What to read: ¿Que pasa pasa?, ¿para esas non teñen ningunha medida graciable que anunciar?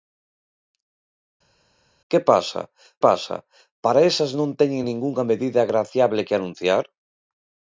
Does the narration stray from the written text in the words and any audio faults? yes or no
no